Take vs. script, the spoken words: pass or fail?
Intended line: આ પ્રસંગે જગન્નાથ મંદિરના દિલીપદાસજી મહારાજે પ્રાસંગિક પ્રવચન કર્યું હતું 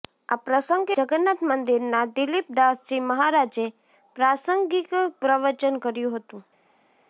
pass